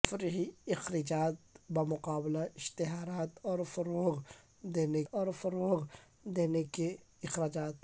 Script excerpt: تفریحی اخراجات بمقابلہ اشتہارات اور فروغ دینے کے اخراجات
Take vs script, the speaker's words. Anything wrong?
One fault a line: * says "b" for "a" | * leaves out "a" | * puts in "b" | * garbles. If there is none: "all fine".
* puts in "اور فروغ دینے"